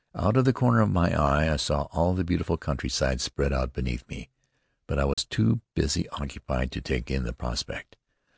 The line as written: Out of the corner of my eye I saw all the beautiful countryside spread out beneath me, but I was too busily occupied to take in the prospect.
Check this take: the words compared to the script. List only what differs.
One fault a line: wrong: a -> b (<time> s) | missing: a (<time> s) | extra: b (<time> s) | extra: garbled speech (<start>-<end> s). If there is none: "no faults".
no faults